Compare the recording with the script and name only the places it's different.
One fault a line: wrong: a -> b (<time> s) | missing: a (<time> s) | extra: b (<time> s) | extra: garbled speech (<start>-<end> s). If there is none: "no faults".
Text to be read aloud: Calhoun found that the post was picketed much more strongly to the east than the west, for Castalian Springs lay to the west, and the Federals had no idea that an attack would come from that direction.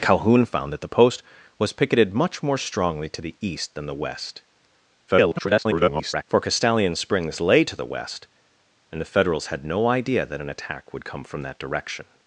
extra: garbled speech (5.1-6.2 s)